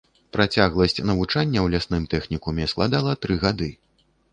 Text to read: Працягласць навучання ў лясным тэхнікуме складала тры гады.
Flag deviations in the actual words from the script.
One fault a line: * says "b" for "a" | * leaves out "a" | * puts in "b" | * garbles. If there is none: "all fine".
all fine